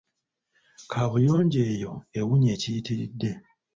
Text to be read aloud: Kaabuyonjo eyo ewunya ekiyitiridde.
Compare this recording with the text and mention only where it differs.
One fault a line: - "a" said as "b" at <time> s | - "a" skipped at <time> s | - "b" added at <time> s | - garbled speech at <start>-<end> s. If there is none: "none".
none